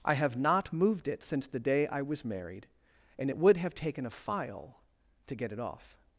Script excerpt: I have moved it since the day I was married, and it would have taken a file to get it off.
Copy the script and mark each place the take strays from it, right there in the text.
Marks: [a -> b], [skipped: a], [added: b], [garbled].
I have [added: not] moved it since the day I was married, and it would have taken a file to get it off.